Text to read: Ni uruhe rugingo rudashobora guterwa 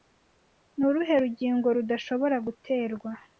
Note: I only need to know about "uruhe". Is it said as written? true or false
true